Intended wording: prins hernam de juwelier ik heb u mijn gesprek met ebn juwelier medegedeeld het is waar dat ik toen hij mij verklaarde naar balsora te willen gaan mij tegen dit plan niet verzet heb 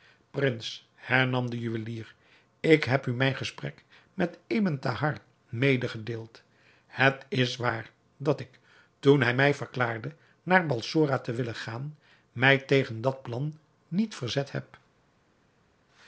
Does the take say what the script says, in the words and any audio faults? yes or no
no